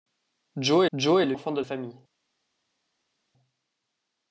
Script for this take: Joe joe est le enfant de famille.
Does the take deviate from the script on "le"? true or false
false